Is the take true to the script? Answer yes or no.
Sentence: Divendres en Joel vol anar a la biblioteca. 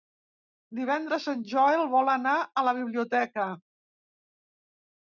yes